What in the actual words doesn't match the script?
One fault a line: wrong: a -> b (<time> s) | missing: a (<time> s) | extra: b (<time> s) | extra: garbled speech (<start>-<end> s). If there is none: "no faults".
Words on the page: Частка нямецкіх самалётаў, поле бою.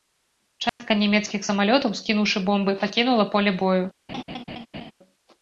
extra: скінуўшы бомбы пакінула (2.0 s)